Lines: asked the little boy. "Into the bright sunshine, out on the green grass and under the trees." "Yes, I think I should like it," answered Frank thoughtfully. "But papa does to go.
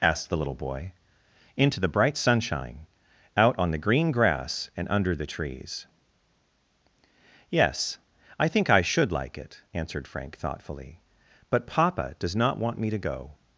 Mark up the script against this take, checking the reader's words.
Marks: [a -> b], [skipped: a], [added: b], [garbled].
asked the little boy. "Into the bright sunshine, out on the green grass and under the trees." "Yes, I think I should like it," answered Frank thoughtfully. "But papa does [added: not want me] to go.